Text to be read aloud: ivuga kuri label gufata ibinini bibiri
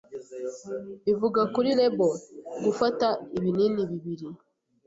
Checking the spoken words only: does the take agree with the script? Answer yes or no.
yes